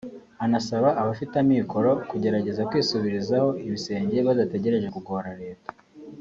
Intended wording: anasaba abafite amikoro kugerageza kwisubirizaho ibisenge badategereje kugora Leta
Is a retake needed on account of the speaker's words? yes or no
no